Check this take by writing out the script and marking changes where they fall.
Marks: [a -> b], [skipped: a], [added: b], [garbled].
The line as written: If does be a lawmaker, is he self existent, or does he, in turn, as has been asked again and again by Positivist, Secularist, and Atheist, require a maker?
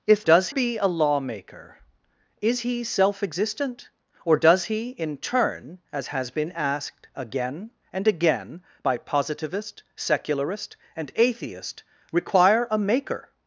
If does be a lawmaker, is he self existent, or does he, in turn, as has been asked again and again by Positivist, Secularist, and Atheist, require a maker?